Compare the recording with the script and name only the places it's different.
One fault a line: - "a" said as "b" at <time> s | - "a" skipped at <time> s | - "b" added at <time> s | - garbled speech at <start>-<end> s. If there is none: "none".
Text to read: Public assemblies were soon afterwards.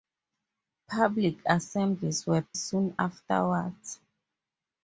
none